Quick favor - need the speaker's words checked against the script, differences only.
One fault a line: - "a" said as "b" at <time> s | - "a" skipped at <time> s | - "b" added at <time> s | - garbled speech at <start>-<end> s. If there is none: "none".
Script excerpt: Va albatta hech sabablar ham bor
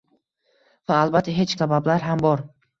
none